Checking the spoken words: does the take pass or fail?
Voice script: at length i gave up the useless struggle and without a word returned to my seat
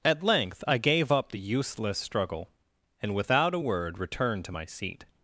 pass